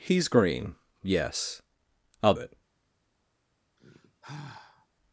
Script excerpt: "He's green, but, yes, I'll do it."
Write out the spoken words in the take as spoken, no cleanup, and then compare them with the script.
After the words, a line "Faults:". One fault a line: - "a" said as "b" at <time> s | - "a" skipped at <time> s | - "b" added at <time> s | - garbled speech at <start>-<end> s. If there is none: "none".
"He's green, yes, I'll it."
Faults:
- "but" skipped at 0.8 s
- "do" skipped at 2.3 s